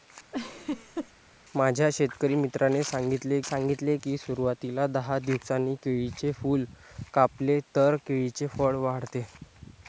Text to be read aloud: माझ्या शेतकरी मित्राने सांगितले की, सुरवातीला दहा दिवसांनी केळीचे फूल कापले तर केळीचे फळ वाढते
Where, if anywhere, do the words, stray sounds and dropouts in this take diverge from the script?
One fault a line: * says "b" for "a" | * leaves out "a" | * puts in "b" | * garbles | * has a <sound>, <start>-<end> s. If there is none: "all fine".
* has a laugh, 0.3-1.1 s
* puts in "सांगितले"